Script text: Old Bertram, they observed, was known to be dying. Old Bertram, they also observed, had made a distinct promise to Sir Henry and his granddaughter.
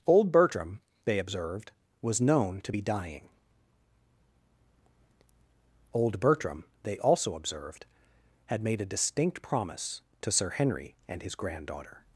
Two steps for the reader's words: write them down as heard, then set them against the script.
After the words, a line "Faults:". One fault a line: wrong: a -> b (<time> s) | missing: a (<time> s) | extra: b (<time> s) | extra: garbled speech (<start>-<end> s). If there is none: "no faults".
Old Bertram, they observed, was known to be dying. Old Bertram, they also observed, had made a distinct promise to Sir Henry and his granddaughter.
Faults:
no faults